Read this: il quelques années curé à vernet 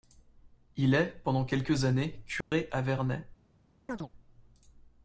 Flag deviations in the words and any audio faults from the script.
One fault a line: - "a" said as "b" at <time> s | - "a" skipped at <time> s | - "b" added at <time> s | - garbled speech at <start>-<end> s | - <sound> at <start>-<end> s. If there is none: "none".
- "est pendant" added at 0.9 s
- dropout at 2.4-2.5 s
- chirp at 3.9-4.1 s